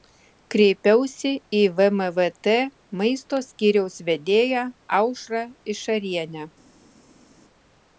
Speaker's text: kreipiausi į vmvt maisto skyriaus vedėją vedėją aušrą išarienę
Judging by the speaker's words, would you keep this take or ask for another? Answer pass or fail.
fail